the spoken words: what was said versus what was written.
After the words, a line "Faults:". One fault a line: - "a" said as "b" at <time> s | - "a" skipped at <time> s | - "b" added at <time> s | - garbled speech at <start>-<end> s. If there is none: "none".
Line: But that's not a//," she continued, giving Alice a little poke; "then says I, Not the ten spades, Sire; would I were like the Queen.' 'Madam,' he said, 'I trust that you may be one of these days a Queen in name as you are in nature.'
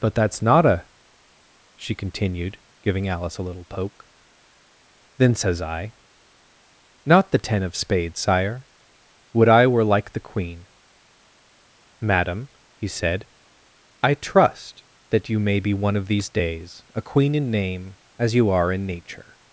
But that's not a//," she continued, giving Alice a little poke; "then says I, Not the ten of spades, Sire; would I were like the Queen.' 'Madam,' he said, 'I trust that you may be one of these days a Queen in name as you are in nature.'
Faults:
- "of" added at 7.6 s